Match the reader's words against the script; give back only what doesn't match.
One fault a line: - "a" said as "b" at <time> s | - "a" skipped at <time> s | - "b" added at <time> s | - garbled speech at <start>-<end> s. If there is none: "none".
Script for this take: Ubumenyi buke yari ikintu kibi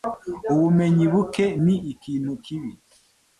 - "yari" said as "ni" at 1.6 s